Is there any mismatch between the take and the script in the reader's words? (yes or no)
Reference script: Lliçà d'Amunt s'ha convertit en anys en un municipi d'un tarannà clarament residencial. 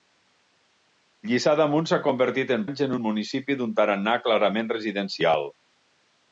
no